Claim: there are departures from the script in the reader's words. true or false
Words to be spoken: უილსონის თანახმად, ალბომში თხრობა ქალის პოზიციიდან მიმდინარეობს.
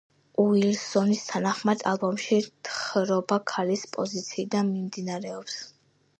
false